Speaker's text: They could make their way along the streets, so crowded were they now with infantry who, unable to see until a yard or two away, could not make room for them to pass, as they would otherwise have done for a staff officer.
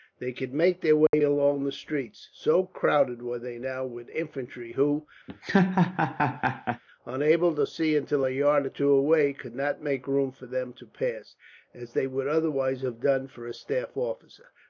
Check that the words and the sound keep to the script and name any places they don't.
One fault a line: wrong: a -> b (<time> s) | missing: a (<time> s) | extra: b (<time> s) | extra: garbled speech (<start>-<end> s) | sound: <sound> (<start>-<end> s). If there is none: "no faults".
sound: dropout (1.1-1.1 s)
sound: laugh (5.3-6.8 s)